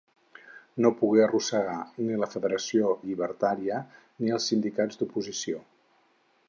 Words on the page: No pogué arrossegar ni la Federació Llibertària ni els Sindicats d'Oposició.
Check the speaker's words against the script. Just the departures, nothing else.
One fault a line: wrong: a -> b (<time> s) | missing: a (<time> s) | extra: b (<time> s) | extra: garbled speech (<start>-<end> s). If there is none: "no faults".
no faults